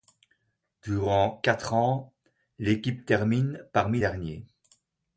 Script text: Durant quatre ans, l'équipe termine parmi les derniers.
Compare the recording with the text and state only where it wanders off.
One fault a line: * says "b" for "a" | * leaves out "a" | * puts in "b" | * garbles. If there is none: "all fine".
* leaves out "les"